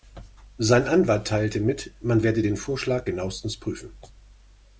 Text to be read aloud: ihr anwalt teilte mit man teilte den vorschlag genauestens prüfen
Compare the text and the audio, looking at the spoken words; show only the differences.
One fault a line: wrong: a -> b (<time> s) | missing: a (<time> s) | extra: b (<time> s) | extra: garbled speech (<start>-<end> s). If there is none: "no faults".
wrong: ihr -> sein (0.6 s)
wrong: teilte -> werde (2.2 s)